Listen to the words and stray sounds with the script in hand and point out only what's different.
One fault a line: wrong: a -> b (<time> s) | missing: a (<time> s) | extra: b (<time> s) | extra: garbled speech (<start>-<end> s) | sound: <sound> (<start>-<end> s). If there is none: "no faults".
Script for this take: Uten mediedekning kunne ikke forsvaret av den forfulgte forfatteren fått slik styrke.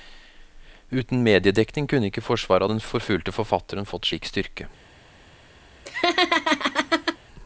sound: laugh (5.8-7.2 s)